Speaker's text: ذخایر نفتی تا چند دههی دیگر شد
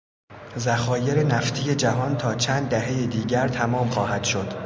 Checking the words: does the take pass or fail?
fail